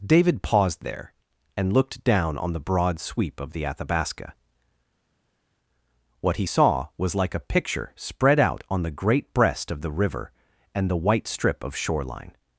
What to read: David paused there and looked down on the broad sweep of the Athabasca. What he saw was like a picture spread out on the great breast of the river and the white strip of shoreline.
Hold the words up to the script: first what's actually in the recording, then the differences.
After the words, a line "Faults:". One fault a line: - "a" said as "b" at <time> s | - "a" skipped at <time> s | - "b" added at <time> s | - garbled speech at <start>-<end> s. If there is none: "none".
David paused there and looked down on the broad sweep of the Athabasca. What he saw was like a picture spread out on the great breast of the river and the white strip of shoreline.
Faults:
none